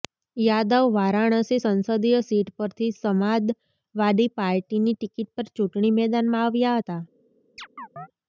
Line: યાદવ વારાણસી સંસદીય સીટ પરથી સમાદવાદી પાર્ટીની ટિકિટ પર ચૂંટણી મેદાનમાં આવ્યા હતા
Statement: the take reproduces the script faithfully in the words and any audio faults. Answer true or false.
false